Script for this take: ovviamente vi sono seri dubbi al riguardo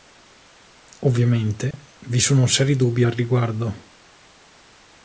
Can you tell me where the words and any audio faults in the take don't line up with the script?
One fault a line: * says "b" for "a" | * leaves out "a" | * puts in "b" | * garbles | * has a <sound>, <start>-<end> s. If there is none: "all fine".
* has a dropout, 1.7-1.7 s